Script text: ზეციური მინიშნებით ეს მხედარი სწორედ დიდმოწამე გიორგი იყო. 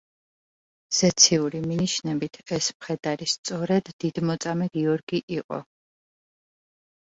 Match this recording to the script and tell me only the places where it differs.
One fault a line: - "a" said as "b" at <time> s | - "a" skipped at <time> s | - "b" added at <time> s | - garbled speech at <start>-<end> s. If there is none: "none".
none